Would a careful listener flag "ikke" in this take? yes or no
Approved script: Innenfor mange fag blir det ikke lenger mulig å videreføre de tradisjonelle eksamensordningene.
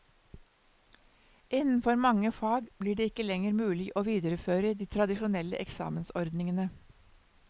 no